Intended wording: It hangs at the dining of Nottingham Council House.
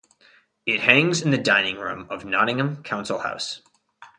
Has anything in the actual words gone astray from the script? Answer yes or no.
yes